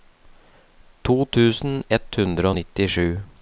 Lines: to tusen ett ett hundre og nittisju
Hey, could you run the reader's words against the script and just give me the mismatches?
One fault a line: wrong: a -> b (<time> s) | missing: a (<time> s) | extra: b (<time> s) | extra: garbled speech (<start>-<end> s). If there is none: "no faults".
missing: ett (2.1 s)